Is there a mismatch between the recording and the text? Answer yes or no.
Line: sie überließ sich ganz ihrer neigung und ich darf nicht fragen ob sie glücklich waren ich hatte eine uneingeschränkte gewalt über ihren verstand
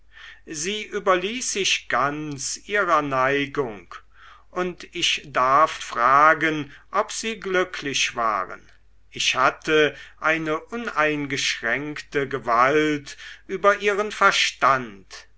yes